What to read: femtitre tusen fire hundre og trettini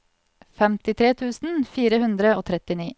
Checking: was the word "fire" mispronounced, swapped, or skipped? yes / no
no